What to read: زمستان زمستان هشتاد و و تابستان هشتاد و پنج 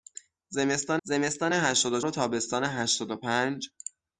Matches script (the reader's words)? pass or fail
pass